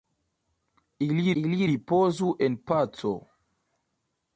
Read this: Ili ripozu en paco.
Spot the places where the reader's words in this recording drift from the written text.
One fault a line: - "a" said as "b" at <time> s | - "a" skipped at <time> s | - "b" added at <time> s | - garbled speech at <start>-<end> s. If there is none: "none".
- "ili" added at 1.4 s